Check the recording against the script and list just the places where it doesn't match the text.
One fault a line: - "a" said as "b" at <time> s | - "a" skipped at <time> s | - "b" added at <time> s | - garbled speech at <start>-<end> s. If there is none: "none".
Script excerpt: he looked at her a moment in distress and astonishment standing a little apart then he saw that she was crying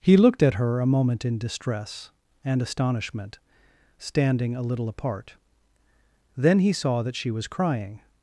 none